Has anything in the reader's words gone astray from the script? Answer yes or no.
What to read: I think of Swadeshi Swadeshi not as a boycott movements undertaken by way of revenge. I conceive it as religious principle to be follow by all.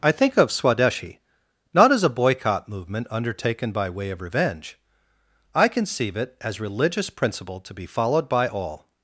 yes